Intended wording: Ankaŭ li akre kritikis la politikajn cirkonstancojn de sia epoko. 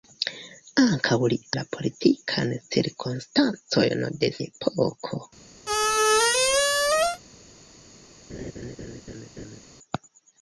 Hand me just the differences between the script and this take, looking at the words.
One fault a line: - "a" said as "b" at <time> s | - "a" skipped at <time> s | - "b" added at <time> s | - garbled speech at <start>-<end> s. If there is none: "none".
- "akre kritikis" skipped at 1.4 s
- "sia" skipped at 4.3 s